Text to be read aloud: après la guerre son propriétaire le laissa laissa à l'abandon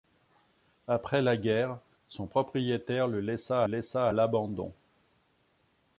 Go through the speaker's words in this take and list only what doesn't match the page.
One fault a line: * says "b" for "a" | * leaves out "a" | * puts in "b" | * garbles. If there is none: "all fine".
all fine